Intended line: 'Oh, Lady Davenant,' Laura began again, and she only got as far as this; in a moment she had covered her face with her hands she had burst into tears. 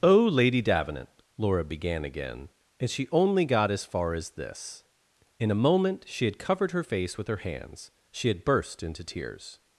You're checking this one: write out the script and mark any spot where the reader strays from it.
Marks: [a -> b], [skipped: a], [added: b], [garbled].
'Oh, Lady Davenant,' Laura began again, and she only got as far as this; in a moment she had covered her face with her hands she had burst into tears.